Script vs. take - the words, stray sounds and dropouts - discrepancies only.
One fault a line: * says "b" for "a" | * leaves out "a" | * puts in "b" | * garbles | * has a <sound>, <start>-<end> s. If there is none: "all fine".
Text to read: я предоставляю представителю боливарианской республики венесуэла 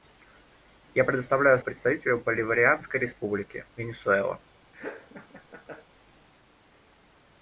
* has a laugh, 4.7-5.9 s